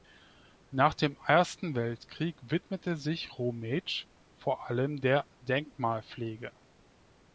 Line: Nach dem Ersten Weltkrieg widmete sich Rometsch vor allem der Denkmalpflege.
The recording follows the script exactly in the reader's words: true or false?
true